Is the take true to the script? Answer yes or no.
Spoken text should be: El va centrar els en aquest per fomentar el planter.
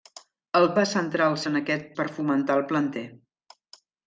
yes